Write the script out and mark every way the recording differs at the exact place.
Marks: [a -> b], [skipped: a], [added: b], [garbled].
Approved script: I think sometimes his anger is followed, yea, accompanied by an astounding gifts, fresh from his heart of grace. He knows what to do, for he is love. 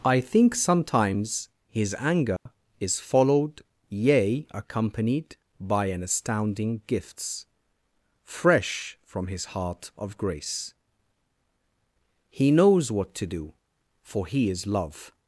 I think sometimes his anger is followed, yea, accompanied by an astounding gifts, fresh from his heart of grace. He knows what to do, for he is love.